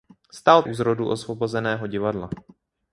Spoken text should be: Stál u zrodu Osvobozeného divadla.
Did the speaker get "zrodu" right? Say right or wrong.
right